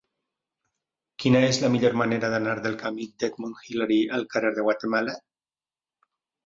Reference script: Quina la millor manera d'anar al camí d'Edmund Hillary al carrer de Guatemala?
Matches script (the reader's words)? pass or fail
fail